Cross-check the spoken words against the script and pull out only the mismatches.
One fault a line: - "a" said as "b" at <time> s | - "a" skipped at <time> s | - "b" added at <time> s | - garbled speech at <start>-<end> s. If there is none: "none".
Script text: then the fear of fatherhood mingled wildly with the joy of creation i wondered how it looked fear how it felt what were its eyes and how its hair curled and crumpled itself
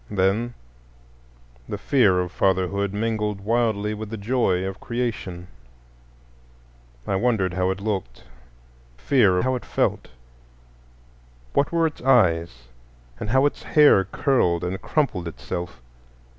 none